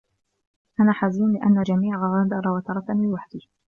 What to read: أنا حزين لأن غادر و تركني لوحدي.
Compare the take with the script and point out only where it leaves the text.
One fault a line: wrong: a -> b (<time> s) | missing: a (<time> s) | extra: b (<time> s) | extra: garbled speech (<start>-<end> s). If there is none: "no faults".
extra: الجميع (1.6 s)